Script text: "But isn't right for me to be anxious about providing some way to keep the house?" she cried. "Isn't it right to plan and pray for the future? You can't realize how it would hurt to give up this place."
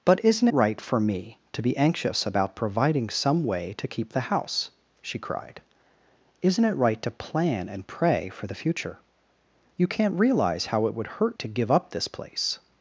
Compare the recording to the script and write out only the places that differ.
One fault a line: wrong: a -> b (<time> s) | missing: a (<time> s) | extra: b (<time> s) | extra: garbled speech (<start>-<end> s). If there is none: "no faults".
no faults